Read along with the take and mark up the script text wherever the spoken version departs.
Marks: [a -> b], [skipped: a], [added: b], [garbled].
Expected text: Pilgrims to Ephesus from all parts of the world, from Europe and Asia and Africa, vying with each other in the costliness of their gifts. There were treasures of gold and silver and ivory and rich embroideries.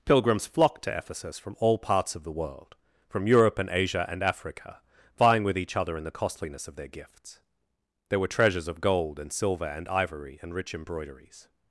Pilgrims [added: flocked] to Ephesus from all parts of the world, from Europe and Asia and Africa, vying with each other in the costliness of their gifts. There were treasures of gold and silver and ivory and rich embroideries.